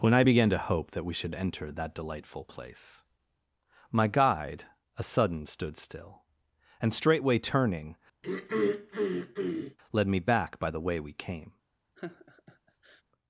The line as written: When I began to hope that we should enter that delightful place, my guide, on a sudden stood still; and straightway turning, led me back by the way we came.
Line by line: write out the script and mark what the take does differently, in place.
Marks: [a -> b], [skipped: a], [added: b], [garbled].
When I began to hope that we should enter that delightful place, my guide, [skipped: on] a sudden stood still; and straightway turning, led me back by the way we came.